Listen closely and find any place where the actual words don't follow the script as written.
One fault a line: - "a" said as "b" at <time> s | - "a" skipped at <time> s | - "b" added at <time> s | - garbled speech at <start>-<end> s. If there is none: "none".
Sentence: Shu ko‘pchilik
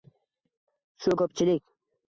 none